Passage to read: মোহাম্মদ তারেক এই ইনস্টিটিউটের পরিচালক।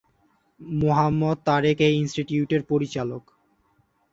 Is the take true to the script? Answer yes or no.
yes